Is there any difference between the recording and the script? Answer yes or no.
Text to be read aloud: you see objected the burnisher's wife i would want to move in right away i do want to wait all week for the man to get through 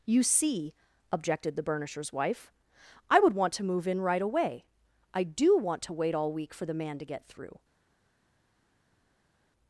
no